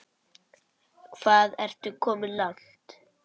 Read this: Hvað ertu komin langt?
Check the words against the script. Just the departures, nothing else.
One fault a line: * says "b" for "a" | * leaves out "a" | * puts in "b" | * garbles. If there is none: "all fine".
all fine